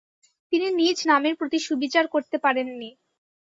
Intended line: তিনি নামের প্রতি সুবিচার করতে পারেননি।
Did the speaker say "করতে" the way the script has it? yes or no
yes